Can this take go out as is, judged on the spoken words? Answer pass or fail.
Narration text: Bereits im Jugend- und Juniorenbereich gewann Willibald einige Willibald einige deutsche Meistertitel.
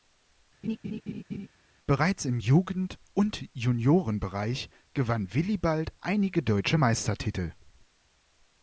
fail